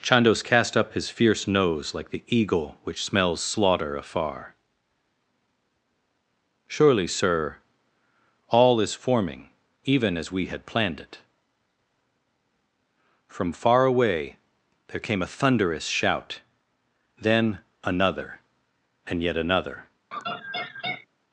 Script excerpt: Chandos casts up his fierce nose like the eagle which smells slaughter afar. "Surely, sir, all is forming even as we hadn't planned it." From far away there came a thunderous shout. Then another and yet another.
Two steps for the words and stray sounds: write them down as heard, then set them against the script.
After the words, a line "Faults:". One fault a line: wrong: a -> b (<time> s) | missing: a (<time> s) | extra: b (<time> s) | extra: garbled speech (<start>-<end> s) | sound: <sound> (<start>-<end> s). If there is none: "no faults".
Chandos cast up his fierce nose like the eagle which smells slaughter afar. "Surely, sir, all is forming even as we had planned it." From far away there came a thunderous shout. Then another and yet another.
Faults:
wrong: casts -> cast (0.4 s)
wrong: hadn't -> had (10.5 s)
sound: laugh (20.1-21.1 s)